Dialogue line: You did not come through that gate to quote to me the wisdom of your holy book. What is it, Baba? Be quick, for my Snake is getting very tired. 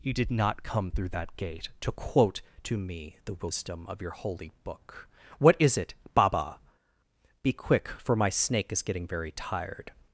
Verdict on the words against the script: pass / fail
pass